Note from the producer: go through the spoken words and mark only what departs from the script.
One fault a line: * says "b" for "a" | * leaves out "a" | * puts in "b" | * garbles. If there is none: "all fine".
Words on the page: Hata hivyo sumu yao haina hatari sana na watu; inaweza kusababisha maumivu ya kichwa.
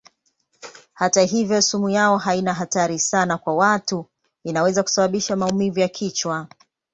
* says "kwa" for "na"